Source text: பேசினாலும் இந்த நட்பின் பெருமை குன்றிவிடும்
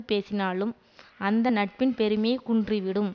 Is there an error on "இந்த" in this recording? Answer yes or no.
yes